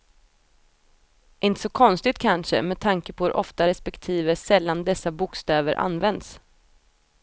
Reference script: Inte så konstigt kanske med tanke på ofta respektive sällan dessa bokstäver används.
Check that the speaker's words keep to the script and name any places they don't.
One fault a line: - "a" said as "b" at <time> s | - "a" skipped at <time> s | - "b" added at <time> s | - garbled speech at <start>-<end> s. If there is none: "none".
- "hur" added at 3.2 s